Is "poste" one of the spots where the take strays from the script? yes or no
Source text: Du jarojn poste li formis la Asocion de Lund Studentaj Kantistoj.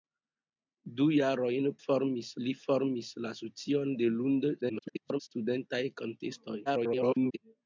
yes